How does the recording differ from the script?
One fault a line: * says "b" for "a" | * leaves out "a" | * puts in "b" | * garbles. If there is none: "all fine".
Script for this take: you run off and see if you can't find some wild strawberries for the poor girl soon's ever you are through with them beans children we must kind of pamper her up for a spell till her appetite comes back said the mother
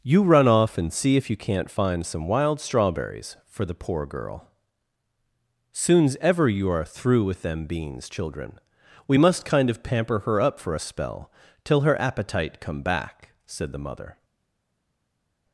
* says "come" for "comes"